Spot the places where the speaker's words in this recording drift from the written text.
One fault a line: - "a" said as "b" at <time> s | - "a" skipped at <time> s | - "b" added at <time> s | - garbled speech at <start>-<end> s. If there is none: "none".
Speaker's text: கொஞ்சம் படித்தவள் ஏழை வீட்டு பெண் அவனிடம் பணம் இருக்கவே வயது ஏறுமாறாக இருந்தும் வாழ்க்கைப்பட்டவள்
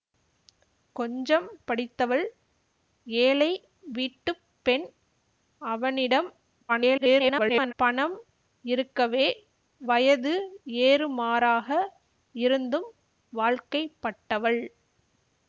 - garbled speech at 6.7-7.7 s